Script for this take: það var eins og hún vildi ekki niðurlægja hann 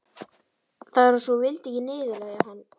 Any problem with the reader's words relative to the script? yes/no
no